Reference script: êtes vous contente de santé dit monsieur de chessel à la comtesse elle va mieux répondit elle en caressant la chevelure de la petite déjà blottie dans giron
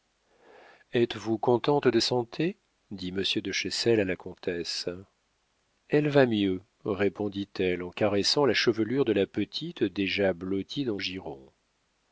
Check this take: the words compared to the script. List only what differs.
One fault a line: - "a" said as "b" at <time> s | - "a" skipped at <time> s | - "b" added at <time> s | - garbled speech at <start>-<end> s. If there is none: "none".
none